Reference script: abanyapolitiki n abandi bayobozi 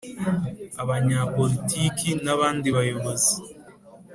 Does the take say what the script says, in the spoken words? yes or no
yes